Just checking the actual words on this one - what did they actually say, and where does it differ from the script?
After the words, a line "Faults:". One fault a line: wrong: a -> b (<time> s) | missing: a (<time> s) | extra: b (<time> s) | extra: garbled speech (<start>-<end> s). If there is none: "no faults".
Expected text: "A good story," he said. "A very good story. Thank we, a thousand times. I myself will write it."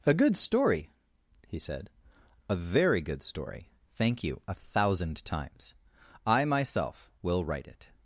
"A good story," he said. "A very good story. Thank you, a thousand times. I myself will write it."
Faults:
wrong: we -> you (4.2 s)